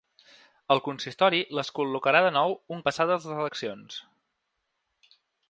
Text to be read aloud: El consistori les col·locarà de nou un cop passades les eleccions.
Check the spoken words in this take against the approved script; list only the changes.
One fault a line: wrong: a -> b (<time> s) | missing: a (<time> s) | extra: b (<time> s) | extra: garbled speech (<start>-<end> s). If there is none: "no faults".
missing: cop (2.8 s)